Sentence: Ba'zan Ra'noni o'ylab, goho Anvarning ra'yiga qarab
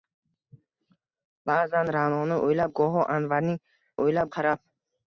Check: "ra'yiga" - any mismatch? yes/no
yes